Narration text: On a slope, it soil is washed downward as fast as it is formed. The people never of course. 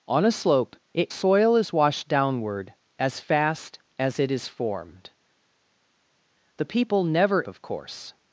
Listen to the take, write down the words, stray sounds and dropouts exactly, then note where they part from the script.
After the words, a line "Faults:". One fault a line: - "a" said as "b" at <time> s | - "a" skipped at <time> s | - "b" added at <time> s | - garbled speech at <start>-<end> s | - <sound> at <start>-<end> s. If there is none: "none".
On a slope, it soil is washed downward as fast as it is formed. The people never of course.
Faults:
none